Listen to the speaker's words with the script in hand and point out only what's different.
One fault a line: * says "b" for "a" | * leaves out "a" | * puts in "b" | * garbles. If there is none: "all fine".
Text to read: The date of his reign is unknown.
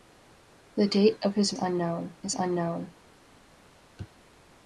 * says "unknown" for "reign"